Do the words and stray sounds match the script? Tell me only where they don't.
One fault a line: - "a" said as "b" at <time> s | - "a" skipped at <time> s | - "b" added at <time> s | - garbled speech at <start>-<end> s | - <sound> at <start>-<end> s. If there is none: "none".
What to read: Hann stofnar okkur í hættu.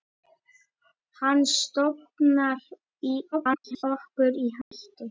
- garbled speech at 3.3-3.8 s
- dropout at 4.6-4.7 s